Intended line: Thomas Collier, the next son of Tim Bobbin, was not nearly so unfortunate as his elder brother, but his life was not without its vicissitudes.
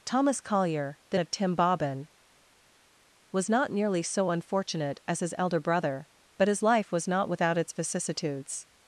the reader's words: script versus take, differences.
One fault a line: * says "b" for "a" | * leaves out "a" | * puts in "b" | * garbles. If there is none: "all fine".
* leaves out "next son"